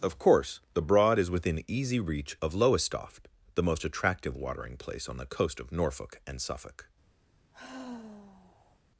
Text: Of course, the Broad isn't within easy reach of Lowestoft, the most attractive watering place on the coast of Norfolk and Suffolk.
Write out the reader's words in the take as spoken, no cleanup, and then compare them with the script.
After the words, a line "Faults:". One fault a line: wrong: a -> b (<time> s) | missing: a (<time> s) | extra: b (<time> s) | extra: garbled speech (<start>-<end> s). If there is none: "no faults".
Of course, the Broad is within easy reach of Lowestoft, the most attractive watering place on the coast of Norfolk and Suffolk.
Faults:
wrong: isn't -> is (1.2 s)